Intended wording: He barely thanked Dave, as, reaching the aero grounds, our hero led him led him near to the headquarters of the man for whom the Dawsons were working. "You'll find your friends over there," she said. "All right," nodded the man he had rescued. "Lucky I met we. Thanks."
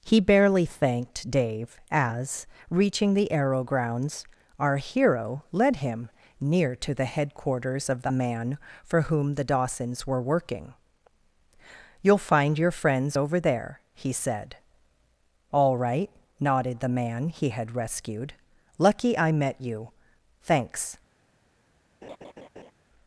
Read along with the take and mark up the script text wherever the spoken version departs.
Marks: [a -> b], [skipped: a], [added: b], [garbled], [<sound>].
He barely thanked Dave, as, reaching the aero grounds, our hero led him [skipped: led him] near to the headquarters of the man for whom the Dawsons were working. "You'll find your friends over there," [she -> he] said. "All right," nodded the man he had rescued. "Lucky I met [we. -> you] Thanks." [laugh]